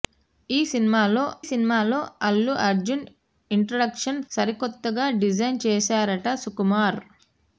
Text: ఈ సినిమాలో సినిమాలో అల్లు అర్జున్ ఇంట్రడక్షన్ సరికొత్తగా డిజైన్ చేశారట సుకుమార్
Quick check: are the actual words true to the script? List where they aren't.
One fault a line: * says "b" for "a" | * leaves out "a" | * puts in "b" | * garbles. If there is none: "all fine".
all fine